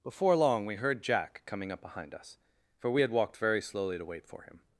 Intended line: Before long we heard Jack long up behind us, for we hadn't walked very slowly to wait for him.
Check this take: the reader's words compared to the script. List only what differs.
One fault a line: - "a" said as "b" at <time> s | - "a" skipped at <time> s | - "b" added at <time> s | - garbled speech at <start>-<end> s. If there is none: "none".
- "long" said as "coming" at 1.4 s
- "hadn't" said as "had" at 3.0 s